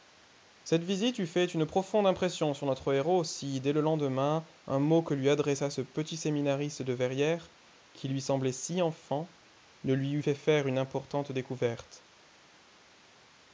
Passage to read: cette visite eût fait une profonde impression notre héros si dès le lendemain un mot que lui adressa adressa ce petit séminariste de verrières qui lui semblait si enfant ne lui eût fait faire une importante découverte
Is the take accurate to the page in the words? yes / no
no